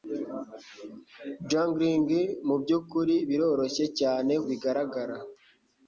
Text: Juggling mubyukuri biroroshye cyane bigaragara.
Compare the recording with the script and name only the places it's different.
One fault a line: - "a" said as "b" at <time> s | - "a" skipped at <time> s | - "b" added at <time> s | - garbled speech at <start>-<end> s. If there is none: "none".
none